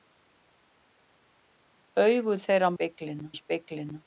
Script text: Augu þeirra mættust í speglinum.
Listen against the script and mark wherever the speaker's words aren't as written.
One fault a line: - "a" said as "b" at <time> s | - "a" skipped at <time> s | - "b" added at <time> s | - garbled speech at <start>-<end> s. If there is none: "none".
- "mættust" said as "speglinum" at 2.7 s